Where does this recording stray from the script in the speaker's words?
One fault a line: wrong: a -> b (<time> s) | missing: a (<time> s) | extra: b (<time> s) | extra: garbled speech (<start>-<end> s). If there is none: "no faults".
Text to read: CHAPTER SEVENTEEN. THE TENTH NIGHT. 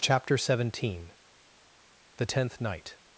no faults